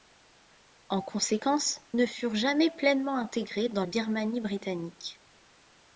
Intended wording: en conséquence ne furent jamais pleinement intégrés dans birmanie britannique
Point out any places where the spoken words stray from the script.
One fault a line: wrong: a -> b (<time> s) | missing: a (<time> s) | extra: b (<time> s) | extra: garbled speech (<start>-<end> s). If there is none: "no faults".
no faults